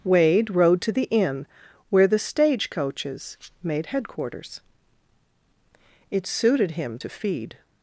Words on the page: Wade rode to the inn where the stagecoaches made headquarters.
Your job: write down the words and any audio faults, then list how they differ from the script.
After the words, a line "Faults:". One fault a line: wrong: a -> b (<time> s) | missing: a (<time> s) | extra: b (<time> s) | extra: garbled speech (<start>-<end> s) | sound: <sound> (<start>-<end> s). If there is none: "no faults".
Wade rode to the inn where the stagecoaches made headquarters. It suited him to feed
Faults:
extra: It suited him to feed (6.1 s)